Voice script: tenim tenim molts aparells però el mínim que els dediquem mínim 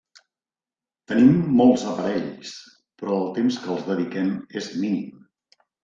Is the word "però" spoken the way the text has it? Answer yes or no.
yes